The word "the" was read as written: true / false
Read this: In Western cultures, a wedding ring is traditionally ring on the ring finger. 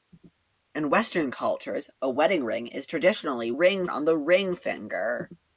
true